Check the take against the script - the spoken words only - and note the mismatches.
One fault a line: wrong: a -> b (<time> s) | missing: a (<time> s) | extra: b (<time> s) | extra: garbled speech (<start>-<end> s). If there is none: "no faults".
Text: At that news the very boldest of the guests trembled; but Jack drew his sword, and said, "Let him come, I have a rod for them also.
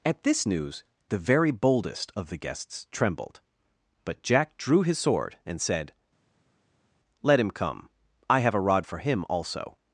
wrong: that -> this (0.2 s)
wrong: them -> him (9.0 s)